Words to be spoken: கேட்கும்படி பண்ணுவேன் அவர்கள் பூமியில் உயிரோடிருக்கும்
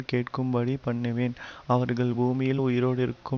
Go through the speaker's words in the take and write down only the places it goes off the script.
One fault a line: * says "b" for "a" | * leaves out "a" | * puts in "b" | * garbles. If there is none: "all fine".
all fine